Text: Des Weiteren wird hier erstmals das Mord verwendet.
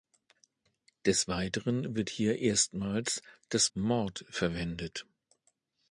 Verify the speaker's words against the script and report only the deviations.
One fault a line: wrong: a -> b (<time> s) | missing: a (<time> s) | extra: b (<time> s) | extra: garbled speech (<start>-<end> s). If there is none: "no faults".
no faults